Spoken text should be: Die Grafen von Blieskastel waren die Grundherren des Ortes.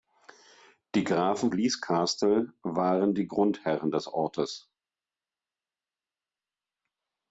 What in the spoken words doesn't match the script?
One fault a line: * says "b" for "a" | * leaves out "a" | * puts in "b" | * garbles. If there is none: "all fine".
* leaves out "von"